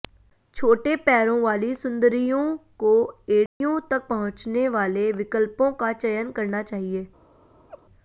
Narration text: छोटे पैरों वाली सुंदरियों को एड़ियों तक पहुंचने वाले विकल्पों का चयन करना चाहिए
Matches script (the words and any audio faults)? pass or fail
fail